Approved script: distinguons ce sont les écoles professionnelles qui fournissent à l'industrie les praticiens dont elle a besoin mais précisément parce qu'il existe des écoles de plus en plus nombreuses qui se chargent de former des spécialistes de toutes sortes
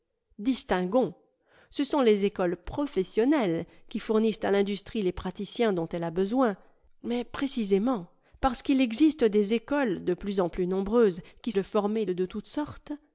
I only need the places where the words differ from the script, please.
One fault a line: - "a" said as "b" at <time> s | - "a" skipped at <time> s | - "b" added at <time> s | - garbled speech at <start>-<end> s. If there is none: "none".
- "se chargent" skipped at 11.5 s
- "des spécialistes" skipped at 12.0 s